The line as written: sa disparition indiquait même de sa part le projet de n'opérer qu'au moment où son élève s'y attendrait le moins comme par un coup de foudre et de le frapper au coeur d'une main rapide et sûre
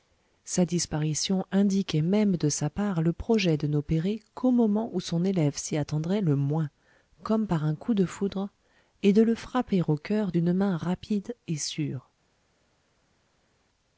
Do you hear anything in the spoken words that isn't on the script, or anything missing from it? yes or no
no